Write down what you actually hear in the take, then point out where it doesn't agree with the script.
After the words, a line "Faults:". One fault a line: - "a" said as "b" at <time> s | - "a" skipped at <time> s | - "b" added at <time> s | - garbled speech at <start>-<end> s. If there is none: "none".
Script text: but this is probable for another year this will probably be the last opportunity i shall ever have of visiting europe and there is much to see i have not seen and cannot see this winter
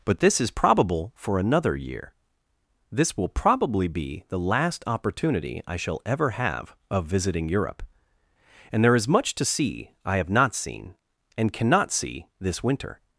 but this is probable for another year this will probably be the last opportunity i shall ever have of visiting europe and there is much to see i have not seen and cannot see this winter
Faults:
none